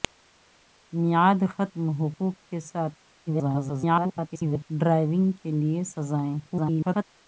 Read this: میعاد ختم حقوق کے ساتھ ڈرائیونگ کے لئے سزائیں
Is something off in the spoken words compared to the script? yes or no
yes